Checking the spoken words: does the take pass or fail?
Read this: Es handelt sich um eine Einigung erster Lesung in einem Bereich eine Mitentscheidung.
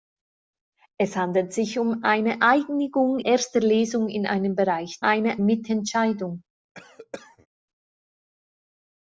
pass